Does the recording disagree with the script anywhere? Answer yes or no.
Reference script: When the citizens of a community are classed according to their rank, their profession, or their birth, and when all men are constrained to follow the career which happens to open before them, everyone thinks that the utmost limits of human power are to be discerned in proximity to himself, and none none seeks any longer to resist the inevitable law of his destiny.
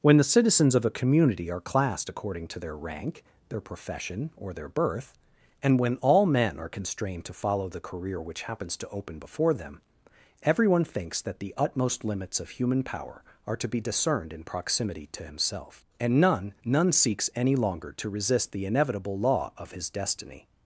no